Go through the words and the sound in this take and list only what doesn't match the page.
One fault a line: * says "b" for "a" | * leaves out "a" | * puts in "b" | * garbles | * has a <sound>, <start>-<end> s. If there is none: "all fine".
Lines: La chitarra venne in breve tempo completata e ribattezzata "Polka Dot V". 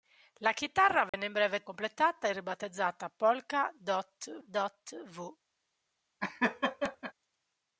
* has a dropout, 1.1-1.1 s
* leaves out "tempo"
* puts in "Dot"
* has a laugh, 6.2-7.1 s